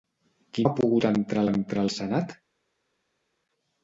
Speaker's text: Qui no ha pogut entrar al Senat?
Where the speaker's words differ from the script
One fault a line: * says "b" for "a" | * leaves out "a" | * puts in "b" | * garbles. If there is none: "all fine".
* leaves out "no"
* puts in "entrar"